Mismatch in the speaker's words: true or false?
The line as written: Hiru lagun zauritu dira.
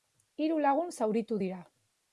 false